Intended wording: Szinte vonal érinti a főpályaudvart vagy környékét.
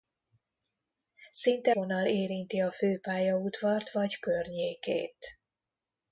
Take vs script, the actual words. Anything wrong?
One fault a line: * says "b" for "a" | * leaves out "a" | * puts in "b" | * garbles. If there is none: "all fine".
all fine